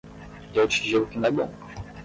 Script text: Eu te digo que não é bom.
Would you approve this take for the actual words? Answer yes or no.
yes